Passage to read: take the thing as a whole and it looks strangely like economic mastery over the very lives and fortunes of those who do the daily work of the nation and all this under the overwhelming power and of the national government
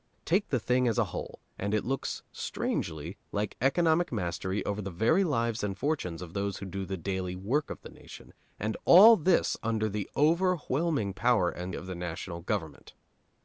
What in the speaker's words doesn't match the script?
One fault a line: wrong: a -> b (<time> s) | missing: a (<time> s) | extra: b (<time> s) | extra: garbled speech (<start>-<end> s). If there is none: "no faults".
no faults